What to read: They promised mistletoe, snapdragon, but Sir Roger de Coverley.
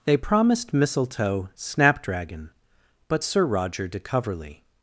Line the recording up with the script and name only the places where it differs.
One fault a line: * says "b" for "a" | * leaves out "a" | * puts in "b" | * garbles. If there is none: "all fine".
all fine